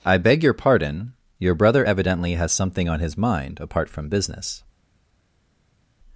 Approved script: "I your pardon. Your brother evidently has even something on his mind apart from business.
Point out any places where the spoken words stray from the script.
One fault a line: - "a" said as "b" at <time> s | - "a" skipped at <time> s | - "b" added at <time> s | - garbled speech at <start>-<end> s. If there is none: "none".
- "beg" added at 0.2 s
- "even" skipped at 2.5 s